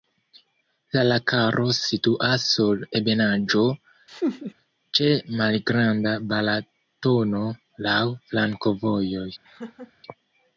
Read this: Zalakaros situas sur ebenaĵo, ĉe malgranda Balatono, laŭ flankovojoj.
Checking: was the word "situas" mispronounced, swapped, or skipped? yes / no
no